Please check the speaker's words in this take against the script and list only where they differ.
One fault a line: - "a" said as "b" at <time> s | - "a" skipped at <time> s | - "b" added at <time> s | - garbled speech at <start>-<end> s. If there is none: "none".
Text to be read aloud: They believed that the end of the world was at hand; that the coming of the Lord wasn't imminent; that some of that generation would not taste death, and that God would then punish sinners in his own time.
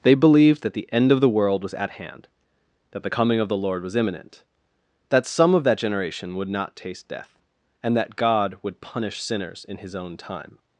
- "wasn't" said as "was" at 3.8 s
- "then" skipped at 8.8 s